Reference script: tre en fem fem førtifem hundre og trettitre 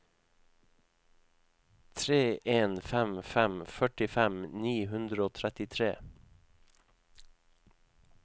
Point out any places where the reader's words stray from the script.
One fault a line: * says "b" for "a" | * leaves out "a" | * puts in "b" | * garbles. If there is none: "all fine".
* puts in "ni"